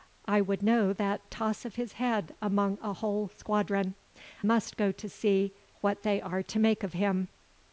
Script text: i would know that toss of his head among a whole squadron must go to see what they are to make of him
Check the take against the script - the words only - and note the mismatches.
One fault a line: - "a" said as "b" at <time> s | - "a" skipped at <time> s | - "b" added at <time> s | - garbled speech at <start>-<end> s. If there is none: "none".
none